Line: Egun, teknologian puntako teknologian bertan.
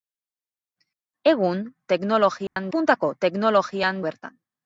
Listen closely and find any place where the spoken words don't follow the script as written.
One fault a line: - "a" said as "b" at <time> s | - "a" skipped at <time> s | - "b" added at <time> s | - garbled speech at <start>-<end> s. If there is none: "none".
none